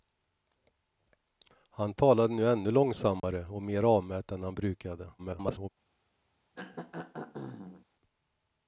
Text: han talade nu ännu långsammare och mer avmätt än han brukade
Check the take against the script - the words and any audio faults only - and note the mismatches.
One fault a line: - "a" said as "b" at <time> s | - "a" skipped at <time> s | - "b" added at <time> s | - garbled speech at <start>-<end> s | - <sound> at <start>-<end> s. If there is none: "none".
- dropout at 3.2-3.2 s
- garbled speech at 5.2-5.7 s
- throat clearing at 6.5-7.8 s